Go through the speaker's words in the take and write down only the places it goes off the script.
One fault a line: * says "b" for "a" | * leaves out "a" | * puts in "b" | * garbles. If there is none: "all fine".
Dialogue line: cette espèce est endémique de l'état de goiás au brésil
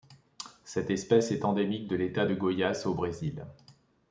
all fine